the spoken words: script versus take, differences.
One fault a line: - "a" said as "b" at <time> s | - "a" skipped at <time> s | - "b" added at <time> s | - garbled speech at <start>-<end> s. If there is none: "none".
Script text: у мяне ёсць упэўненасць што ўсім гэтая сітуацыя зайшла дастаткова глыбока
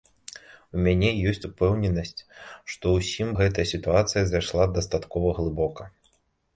none